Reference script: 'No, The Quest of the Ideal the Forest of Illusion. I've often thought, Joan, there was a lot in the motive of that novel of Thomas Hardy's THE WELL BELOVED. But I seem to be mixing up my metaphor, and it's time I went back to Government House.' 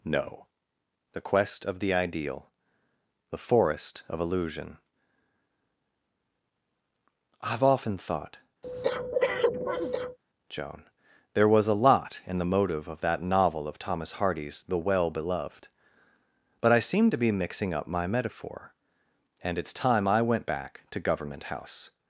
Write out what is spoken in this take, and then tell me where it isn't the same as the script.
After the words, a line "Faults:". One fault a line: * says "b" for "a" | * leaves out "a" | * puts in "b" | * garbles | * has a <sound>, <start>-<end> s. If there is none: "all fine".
'No, The Quest of the Ideal the Forest of Illusion. I've often thought, Joan, there was a lot in the motive of that novel of Thomas Hardy's THE WELL BELOVED. But I seem to be mixing up my metaphor, and it's time I went back to Government House.'
Faults:
* has a breath, 8.6-10.2 s